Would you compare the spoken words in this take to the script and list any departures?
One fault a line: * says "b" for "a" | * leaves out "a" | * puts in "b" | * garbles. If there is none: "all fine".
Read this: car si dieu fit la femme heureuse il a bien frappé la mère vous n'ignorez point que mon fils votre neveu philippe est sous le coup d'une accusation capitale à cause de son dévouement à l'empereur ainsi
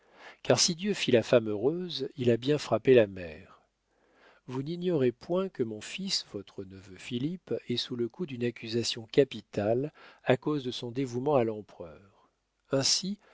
all fine